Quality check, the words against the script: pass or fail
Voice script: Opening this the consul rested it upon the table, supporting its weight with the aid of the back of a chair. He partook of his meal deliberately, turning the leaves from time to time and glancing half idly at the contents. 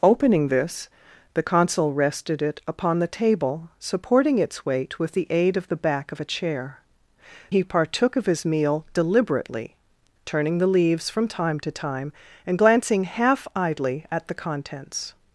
pass